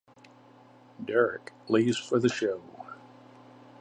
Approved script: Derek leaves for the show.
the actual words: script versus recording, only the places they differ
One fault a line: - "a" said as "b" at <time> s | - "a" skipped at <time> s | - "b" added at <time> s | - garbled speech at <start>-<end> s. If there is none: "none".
none